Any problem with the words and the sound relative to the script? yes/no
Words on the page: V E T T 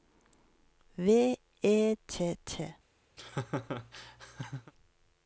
yes